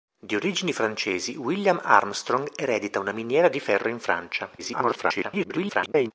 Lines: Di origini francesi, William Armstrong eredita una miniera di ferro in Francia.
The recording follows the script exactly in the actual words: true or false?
false